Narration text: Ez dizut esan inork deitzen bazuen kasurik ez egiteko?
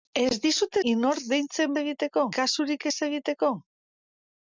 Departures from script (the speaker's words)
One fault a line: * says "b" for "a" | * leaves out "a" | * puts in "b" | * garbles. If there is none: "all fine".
* leaves out "esan"
* says "egiteko" for "bazuen"